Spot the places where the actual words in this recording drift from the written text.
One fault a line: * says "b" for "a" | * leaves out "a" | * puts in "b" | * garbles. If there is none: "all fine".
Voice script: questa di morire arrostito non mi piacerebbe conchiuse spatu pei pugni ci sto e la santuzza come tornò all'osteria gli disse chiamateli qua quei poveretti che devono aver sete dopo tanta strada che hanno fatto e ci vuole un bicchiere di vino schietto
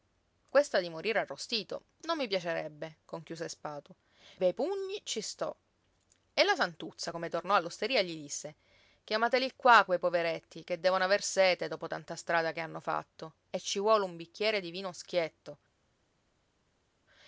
all fine